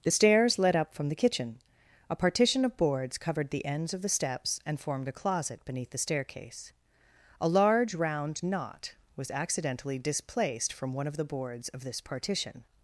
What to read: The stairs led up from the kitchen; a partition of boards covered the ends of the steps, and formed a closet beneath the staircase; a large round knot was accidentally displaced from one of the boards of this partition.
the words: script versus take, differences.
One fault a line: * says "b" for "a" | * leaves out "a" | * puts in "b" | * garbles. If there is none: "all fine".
all fine